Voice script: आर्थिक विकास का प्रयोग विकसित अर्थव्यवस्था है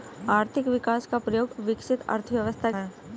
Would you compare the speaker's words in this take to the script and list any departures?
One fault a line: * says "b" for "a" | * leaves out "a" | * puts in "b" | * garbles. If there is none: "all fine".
all fine